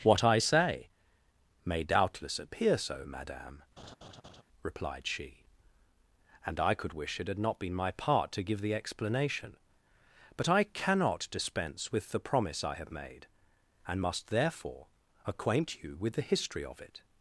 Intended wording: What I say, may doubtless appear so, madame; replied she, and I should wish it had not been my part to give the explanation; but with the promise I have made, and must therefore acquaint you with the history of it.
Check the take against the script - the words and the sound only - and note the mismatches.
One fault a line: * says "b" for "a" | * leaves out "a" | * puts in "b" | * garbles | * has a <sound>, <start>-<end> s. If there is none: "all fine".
* has a laugh, 3.8-4.4 s
* says "could" for "should"
* puts in "I cannot dispense"